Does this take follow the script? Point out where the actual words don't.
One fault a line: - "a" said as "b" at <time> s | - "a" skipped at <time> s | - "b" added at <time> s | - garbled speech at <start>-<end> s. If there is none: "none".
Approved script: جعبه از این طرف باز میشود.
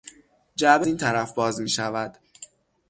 - "از" skipped at 0.9 s